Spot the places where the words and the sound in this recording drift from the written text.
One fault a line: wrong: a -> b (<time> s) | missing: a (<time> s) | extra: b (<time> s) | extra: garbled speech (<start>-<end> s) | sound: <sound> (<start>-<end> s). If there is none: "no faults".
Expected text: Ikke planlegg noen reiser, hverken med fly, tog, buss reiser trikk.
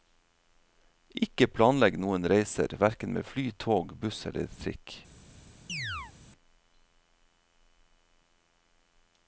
wrong: reiser -> eller (4.3 s)
sound: chirp (5.7-6.1 s)